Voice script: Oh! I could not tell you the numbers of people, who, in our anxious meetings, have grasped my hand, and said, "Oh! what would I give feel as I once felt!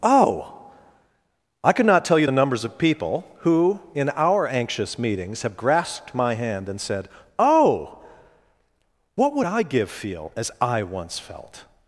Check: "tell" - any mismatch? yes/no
no